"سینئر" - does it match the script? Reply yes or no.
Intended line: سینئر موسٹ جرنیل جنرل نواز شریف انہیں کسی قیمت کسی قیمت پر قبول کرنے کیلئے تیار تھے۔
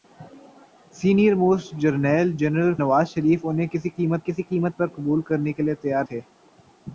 yes